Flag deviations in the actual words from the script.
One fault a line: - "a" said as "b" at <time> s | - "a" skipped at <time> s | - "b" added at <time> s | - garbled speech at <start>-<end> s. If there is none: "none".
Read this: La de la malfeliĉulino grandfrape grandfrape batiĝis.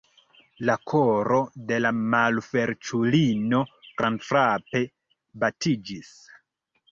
- "koro" added at 0.9 s
- "grandfrape" skipped at 4.8 s